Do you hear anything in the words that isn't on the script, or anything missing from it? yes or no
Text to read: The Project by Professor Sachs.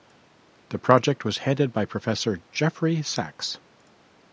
yes